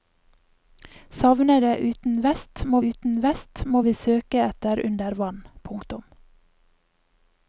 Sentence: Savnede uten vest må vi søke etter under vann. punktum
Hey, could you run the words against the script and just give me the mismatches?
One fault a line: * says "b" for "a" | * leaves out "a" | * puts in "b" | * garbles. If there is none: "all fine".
* puts in "uten vest må"